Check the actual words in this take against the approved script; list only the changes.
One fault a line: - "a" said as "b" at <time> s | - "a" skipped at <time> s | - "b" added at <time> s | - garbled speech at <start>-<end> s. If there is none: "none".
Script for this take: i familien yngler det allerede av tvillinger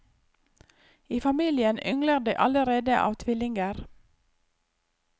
none